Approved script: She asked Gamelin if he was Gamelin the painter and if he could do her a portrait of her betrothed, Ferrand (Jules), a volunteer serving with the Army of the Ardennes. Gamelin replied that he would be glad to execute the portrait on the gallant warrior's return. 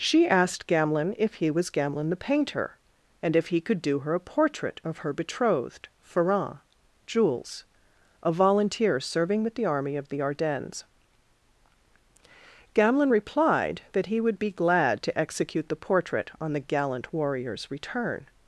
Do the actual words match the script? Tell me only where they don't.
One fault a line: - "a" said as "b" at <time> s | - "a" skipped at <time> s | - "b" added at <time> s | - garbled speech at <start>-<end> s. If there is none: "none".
none